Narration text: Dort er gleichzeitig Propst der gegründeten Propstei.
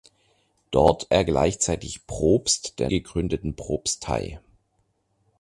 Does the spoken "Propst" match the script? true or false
true